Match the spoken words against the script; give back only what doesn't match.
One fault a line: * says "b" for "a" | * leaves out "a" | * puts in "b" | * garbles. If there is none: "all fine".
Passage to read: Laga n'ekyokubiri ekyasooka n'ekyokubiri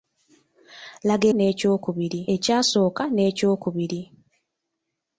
all fine